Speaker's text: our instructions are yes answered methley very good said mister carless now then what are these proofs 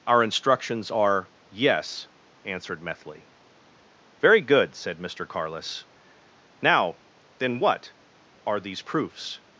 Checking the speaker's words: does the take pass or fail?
pass